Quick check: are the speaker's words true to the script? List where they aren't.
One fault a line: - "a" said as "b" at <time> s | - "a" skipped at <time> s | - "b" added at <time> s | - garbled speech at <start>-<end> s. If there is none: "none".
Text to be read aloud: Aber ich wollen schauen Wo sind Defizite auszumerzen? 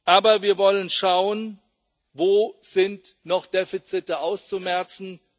- "ich" said as "wir" at 0.4 s
- "noch" added at 3.2 s